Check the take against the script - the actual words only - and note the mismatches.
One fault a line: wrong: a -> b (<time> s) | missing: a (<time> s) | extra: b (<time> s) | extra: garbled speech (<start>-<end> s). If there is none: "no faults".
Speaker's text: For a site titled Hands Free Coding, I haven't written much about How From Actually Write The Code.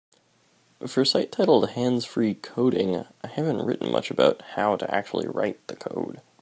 wrong: From -> To (4.7 s)